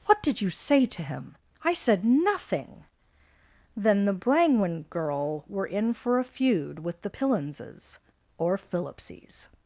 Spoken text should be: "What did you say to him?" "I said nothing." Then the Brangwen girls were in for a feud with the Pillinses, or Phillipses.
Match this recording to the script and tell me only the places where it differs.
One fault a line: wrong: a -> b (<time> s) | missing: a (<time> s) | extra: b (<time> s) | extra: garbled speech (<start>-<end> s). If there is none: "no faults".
wrong: girls -> girl (4.9 s)